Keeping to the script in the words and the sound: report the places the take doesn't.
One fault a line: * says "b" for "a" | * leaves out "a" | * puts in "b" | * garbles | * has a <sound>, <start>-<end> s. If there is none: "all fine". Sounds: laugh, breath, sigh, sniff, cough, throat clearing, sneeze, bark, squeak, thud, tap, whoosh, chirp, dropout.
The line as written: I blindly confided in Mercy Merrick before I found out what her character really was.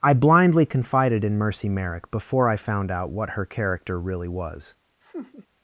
* has a laugh, 5.0-5.5 s